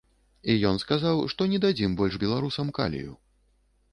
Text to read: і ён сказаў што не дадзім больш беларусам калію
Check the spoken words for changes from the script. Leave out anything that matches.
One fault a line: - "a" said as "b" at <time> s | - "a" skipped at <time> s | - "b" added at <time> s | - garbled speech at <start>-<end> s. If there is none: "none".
none